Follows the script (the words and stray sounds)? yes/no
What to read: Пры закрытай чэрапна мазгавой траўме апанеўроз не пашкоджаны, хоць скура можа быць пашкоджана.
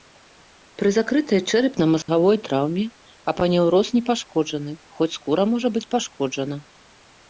no